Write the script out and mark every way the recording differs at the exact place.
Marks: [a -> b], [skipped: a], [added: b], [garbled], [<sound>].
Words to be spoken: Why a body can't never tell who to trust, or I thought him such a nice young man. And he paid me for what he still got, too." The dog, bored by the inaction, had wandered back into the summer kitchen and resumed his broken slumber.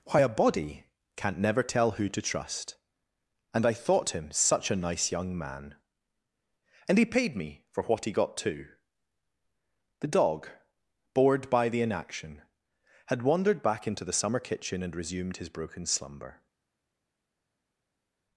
Why a body can't never tell who to trust, [or -> and] I thought him such a nice young man. And he paid me for what he [skipped: still] got, too." The dog, bored by the inaction, had wandered back into the summer kitchen and resumed his broken slumber.